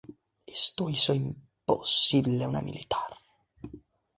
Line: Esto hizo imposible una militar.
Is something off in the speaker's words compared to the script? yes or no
no